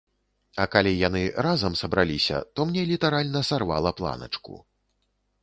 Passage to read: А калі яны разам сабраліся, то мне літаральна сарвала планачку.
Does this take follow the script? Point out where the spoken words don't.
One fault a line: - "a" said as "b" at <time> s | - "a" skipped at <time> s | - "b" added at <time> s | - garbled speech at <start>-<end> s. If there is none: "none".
none